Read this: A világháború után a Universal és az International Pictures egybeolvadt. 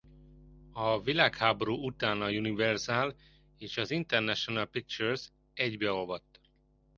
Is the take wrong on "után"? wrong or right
right